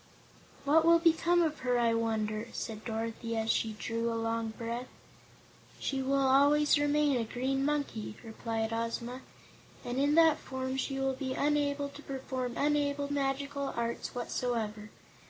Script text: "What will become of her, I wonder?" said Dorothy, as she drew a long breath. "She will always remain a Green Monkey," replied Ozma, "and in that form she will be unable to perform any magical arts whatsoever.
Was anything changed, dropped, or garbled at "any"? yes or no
yes